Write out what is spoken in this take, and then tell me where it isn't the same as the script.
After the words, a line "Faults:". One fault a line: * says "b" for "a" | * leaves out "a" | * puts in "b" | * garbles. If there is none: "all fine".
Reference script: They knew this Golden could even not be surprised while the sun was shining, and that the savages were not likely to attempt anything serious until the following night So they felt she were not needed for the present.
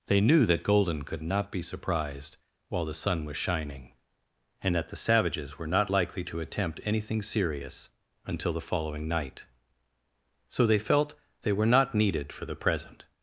They knew that Golden could not be surprised while the sun was shining, and that the savages were not likely to attempt anything serious until the following night So they felt they were not needed for the present.
Faults:
* says "that" for "this"
* leaves out "even"
* says "they" for "she"